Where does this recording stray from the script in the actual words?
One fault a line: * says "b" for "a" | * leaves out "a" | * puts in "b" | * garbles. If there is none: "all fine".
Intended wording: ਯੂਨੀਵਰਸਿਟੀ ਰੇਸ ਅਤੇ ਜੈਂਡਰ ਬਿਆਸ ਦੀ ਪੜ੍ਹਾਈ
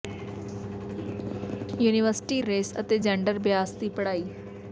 all fine